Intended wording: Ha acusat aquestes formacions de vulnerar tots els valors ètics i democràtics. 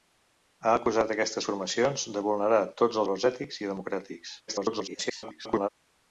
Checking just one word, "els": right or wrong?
wrong